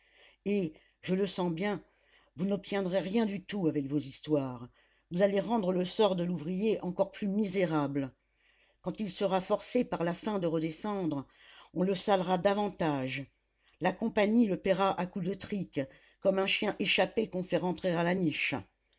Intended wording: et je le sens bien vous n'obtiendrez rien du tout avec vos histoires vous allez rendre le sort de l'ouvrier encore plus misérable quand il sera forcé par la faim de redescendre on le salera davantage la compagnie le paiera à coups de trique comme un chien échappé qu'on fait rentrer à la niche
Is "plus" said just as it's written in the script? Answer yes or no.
yes